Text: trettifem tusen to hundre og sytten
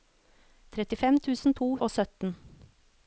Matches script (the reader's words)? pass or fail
fail